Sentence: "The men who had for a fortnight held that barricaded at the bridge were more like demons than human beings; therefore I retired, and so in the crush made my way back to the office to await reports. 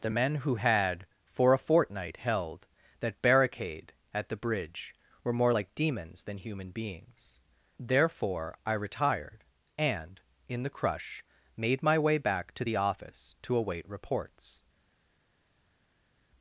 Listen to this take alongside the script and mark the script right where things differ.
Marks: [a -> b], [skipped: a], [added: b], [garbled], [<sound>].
"The men who had for a fortnight held that [barricaded -> barricade] at the bridge were more like demons than human beings; therefore I retired, and [skipped: so] in the crush made my way back to the office to await reports.